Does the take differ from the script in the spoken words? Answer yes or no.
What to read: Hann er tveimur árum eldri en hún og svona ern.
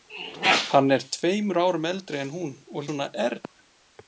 no